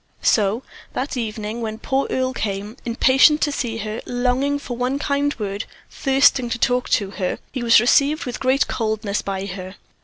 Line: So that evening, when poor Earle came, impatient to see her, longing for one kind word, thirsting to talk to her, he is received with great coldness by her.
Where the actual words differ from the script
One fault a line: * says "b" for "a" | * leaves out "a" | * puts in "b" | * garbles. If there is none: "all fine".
* says "was" for "is"